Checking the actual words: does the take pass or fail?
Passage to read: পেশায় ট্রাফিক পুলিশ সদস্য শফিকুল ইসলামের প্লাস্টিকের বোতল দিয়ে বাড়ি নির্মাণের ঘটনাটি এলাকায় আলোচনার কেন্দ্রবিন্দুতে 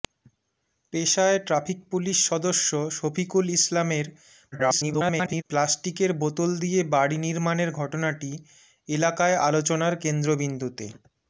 fail